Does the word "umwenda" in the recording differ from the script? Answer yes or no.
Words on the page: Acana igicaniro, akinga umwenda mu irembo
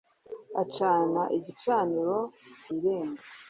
yes